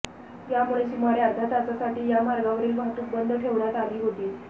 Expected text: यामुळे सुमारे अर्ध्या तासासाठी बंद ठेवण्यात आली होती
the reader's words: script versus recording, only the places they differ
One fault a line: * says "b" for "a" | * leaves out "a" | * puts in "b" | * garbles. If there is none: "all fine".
* puts in "या मार्गावरील वाहतूक"